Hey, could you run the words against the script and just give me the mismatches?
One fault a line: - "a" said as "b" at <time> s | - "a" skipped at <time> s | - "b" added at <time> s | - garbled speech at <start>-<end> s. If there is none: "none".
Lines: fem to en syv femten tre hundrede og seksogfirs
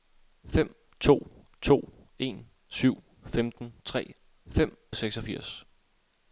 - "to" added at 1.6 s
- "hundrede" said as "fem" at 4.5 s